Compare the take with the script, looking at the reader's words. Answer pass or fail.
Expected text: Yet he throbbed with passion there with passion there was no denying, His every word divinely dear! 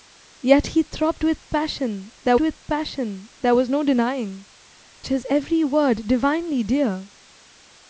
pass